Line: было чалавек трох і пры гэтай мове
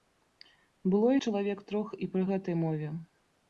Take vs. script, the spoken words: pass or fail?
pass